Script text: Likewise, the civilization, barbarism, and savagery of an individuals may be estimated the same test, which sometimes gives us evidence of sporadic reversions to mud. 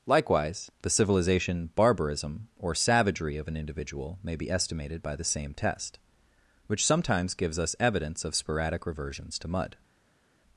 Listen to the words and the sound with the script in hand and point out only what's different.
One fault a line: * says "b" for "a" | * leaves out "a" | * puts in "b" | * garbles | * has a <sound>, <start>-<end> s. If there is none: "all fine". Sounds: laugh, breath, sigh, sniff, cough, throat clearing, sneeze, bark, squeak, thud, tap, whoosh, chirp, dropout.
* says "or" for "and"
* says "individual" for "individuals"
* puts in "by"